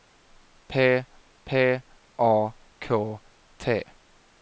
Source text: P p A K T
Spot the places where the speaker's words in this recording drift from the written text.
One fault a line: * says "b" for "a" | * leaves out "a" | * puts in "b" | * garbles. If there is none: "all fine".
all fine